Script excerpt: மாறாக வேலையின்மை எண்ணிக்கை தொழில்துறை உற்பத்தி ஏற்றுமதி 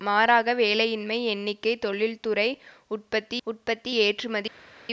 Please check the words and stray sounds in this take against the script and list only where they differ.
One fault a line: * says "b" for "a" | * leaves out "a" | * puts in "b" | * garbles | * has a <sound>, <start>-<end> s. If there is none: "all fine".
* puts in "உற்பத்தி"